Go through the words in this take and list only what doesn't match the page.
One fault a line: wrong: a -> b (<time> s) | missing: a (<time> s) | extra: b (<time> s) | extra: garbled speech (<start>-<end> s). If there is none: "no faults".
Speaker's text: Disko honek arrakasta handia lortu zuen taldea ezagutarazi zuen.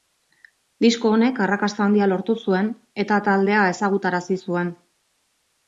extra: eta (3.0 s)